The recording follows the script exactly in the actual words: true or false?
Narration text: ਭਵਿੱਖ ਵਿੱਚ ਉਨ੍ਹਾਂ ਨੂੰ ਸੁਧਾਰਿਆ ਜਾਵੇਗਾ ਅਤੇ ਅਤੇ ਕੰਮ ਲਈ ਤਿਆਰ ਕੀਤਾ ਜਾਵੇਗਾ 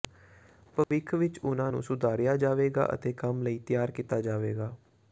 false